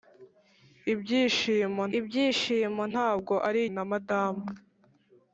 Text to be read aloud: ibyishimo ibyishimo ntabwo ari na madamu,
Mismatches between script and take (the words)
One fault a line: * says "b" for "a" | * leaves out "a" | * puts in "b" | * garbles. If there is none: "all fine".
all fine